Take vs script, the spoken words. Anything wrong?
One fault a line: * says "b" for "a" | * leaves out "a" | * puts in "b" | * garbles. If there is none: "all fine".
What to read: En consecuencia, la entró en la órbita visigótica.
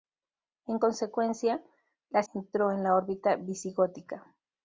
all fine